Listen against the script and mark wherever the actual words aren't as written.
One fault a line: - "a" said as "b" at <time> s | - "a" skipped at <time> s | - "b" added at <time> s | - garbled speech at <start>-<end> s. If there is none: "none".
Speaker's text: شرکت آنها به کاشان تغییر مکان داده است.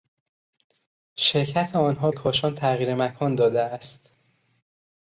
- "به" skipped at 2.1 s